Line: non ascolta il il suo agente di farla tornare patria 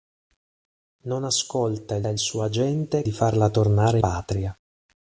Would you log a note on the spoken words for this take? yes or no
no